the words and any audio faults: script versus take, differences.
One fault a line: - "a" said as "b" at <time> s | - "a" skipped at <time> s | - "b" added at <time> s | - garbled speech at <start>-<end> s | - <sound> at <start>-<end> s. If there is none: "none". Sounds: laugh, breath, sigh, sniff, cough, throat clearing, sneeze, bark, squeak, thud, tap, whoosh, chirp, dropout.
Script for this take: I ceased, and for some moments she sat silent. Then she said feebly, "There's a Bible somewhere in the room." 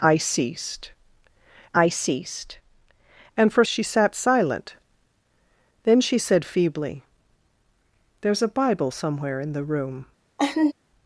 - "I ceased" added at 1.8 s
- "some moments" skipped at 3.6 s
- laugh at 10.4-10.7 s